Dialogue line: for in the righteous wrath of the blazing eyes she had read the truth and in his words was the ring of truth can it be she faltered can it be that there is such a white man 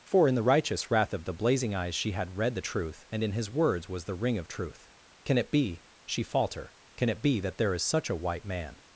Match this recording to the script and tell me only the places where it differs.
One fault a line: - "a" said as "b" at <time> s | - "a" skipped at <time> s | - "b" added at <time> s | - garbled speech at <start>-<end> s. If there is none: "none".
- "faltered" said as "falter" at 6.2 s